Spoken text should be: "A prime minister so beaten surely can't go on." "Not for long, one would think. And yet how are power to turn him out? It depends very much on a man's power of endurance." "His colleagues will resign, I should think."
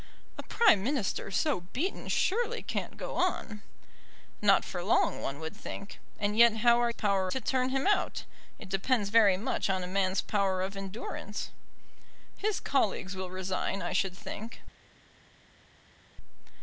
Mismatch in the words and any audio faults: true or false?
false